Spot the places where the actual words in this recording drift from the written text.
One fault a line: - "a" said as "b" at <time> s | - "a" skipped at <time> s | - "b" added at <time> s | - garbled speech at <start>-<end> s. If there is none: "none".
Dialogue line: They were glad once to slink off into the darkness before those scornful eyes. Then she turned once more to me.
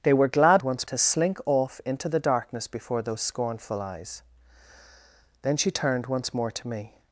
none